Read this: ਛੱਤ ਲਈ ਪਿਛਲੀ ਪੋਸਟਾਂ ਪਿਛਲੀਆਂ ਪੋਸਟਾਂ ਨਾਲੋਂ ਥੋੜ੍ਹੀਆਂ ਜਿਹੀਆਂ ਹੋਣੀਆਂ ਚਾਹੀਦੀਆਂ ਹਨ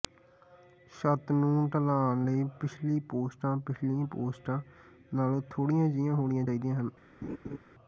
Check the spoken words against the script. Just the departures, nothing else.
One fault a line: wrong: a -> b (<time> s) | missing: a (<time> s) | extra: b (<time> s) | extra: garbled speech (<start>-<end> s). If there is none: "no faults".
extra: ਨੂੰ ਢਲਾਣ (1.3 s)